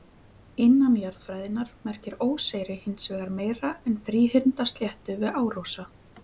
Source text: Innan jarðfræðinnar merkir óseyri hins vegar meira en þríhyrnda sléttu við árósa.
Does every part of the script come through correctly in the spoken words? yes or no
yes